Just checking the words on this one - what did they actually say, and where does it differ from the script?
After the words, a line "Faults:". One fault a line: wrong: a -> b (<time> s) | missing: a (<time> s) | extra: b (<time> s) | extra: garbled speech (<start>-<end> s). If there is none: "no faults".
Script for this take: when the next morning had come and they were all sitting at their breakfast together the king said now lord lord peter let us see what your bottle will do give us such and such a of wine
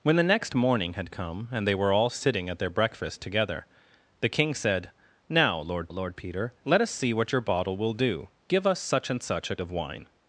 when the next morning had come and they were all sitting at their breakfast together the king said now lord lord peter let us see what your bottle will do give us such and such a of wine
Faults:
no faults